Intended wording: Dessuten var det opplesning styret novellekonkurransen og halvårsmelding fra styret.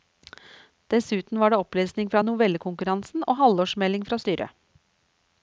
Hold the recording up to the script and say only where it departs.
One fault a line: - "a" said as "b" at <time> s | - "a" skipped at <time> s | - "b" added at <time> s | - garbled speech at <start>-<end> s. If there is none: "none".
- "styret" said as "fra" at 2.1 s